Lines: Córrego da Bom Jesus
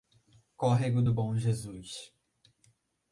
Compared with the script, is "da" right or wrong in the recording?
wrong